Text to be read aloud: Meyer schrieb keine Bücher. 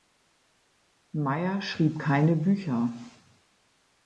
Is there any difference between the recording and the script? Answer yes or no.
no